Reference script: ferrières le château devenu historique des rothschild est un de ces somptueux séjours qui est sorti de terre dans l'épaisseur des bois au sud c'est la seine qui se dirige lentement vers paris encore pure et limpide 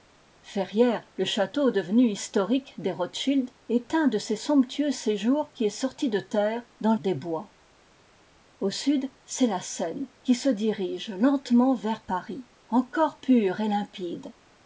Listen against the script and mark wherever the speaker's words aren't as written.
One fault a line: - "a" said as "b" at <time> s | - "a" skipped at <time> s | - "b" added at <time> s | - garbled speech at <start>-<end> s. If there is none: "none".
- "l'épaisseur" skipped at 7.0 s